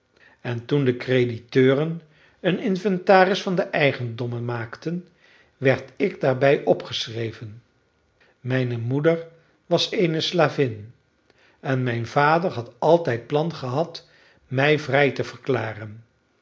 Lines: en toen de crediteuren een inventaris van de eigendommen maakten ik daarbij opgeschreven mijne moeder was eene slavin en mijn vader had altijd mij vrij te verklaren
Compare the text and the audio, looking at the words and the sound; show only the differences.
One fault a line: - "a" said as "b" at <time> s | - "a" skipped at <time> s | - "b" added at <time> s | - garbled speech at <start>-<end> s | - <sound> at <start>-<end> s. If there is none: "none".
- "werd" added at 5.6 s
- "plan gehad" added at 13.3 s